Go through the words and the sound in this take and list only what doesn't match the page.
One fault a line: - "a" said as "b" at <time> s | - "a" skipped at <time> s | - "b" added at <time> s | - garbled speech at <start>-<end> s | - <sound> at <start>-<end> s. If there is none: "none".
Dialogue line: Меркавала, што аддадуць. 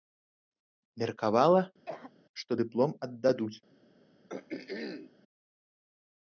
- cough at 1.9-2.1 s
- "дыплом" added at 2.6 s
- throat clearing at 4.3-5.1 s